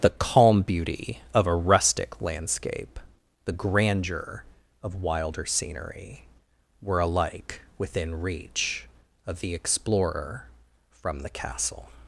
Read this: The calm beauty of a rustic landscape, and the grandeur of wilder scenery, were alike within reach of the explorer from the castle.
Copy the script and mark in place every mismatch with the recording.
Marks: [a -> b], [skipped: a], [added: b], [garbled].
The calm beauty of a rustic landscape, [skipped: and] the grandeur of wilder scenery, were alike within reach of the explorer from the castle.